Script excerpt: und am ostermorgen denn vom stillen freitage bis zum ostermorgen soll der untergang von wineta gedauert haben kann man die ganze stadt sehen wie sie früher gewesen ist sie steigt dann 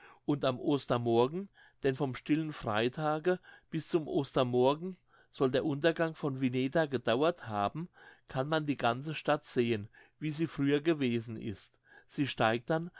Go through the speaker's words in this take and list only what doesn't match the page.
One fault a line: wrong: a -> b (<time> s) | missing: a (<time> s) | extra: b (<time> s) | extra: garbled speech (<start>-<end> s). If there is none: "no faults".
no faults